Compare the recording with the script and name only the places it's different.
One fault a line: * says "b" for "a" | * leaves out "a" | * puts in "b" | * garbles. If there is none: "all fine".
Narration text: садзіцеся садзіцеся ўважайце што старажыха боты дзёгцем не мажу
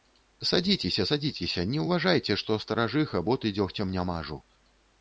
* puts in "не"